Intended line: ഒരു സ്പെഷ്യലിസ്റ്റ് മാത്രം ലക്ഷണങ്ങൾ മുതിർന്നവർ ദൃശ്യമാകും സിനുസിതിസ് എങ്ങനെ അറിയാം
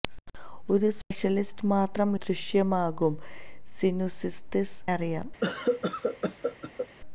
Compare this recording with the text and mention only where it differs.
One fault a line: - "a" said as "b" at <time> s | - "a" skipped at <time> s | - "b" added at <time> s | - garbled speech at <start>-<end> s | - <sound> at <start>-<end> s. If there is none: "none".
- "ലക്ഷണങ്ങൾ മുതിർന്നവർ" skipped at 2.1 s
- "എങ്ങനെ" skipped at 4.6 s
- cough at 5.4-6.9 s